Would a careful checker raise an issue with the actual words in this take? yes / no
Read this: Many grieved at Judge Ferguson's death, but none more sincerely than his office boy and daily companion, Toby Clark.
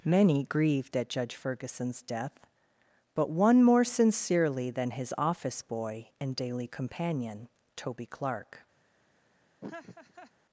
yes